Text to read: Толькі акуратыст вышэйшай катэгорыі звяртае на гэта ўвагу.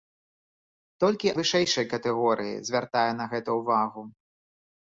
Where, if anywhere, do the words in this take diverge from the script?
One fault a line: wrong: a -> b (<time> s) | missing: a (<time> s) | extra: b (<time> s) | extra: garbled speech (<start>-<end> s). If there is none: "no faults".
missing: акуратыст (1.3 s)